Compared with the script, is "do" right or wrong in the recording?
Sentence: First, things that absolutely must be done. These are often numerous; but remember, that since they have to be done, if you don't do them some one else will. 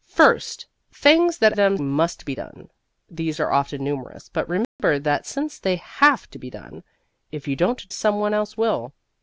wrong